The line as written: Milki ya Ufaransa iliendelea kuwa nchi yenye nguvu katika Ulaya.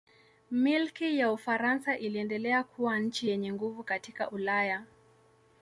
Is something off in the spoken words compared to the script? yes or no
no